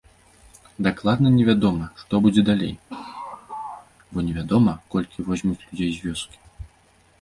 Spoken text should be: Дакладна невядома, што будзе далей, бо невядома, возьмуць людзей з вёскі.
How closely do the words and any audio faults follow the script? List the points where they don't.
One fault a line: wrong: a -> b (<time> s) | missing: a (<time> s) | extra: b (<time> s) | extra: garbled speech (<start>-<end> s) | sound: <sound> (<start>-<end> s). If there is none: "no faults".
sound: laugh (2.9-3.9 s)
extra: колькі (4.9 s)